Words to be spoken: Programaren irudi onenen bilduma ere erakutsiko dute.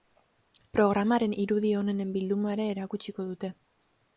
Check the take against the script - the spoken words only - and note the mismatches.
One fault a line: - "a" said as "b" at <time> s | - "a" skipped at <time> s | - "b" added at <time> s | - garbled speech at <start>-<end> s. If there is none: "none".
none